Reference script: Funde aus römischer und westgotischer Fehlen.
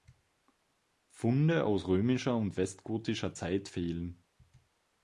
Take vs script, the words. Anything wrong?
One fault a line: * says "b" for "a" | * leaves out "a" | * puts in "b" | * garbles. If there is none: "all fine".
* puts in "Zeit"